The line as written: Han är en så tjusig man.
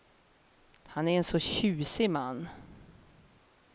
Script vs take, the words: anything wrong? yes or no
no